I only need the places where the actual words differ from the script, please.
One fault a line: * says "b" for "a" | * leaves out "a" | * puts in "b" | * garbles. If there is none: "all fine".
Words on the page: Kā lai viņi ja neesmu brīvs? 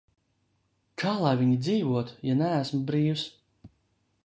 * puts in "dzīvotu"